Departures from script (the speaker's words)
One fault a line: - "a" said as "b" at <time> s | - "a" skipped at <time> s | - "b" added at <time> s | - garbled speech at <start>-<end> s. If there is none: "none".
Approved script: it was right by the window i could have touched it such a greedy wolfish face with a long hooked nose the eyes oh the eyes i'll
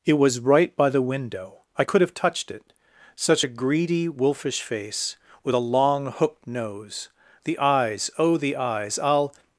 none